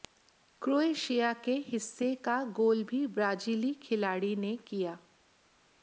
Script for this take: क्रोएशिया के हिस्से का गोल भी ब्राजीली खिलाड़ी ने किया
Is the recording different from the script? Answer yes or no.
no